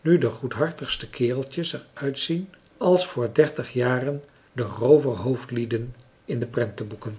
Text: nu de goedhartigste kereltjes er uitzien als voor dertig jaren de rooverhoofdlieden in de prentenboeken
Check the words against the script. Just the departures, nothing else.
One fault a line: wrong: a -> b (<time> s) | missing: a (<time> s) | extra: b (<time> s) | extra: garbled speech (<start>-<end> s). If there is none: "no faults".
no faults